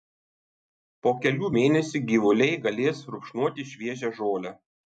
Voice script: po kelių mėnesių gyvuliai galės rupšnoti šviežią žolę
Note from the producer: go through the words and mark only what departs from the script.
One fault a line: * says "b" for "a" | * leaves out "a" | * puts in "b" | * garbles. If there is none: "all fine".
all fine